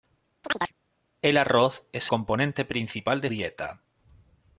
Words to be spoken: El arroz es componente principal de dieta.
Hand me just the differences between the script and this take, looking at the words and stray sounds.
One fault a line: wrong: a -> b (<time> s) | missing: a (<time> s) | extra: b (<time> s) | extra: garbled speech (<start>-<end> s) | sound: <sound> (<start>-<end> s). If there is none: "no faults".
sound: chirp (0.4-0.7 s)